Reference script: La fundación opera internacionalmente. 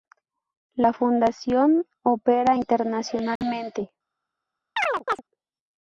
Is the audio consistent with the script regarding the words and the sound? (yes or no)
no